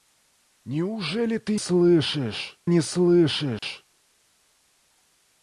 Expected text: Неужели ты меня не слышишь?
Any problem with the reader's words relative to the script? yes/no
yes